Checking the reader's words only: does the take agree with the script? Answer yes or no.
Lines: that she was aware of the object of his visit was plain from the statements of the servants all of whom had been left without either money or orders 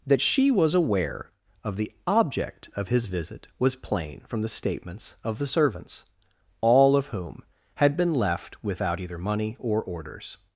yes